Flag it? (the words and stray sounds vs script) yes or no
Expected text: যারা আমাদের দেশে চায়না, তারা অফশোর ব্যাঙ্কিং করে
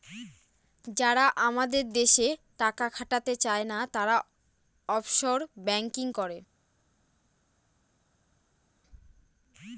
yes